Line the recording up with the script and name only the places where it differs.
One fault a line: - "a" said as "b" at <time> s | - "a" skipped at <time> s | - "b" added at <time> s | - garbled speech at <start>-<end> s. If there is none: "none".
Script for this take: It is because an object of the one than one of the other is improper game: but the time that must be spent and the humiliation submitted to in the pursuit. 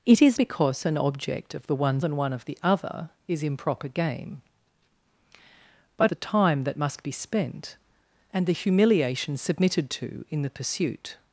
none